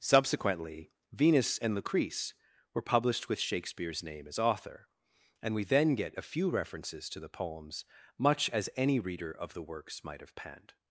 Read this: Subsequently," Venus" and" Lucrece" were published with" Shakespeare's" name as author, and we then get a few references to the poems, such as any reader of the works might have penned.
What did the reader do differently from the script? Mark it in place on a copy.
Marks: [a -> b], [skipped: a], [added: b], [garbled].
Subsequently," Venus" and" Lucrece" were published with" Shakespeare's" name as author, and we then get a few references to the poems, [such -> much] as any reader of the works might have penned.